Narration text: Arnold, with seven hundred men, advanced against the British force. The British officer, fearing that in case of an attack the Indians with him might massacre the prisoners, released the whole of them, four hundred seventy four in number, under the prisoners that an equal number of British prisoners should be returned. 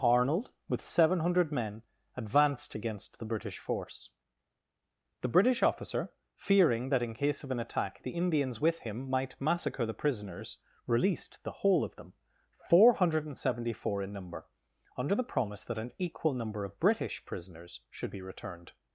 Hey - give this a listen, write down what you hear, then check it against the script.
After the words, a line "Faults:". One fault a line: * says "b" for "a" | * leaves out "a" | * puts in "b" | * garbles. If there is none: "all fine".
Arnold, with seven hundred men, advanced against the British force. The British officer, fearing that in case of an attack the Indians with him might massacre the prisoners, released the whole of them, four hundred seventy four in number, under the promise that an equal number of British prisoners should be returned.
Faults:
* says "promise" for "prisoners"